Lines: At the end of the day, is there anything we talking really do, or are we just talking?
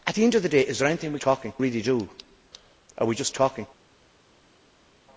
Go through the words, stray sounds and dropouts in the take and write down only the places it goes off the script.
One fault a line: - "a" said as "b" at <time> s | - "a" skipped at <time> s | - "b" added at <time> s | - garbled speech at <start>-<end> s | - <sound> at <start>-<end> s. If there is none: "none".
none